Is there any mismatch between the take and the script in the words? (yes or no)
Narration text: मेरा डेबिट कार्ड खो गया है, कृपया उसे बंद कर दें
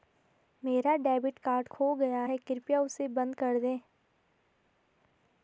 no